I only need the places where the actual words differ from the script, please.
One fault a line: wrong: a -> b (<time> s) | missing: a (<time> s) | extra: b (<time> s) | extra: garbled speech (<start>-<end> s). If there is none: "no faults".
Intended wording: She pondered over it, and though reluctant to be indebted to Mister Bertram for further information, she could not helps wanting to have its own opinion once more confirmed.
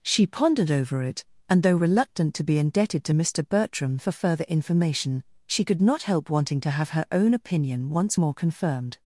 wrong: helps -> help (6.0 s)
wrong: its -> her (6.9 s)